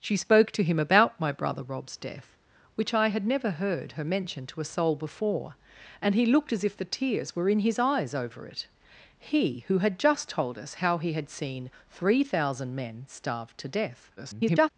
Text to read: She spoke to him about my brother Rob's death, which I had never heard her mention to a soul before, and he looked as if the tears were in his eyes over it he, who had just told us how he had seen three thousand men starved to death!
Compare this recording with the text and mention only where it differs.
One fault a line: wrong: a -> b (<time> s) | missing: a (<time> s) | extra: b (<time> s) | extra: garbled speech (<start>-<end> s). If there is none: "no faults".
extra: garbled speech (14.2-14.7 s)